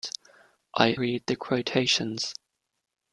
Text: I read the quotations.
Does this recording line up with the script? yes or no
yes